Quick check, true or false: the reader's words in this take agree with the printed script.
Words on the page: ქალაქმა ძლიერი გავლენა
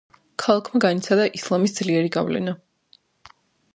false